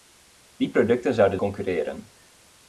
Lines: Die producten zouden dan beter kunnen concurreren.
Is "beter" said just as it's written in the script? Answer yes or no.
no